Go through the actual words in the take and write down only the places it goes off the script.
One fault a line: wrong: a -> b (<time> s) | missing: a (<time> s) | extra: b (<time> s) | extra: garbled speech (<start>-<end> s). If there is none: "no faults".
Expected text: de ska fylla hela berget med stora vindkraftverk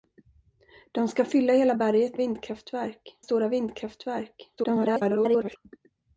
wrong: med -> vindkraftverk (2.1 s)
extra: garbled speech (4.6-5.6 s)